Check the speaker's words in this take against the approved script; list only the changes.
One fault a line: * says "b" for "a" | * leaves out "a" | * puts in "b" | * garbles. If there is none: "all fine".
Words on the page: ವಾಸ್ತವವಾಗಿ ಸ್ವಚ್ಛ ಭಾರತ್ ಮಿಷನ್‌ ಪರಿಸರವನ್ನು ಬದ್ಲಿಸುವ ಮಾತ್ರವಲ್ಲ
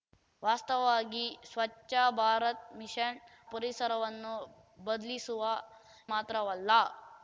all fine